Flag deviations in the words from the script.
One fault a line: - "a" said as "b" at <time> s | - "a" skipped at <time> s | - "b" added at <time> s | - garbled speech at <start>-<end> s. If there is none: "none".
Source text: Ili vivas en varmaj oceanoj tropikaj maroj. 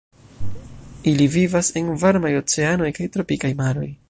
- "kaj" added at 3.0 s